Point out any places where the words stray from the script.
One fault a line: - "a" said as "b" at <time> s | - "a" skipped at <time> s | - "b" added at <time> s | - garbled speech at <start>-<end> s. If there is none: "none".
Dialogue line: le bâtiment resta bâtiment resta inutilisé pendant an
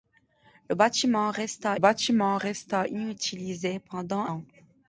none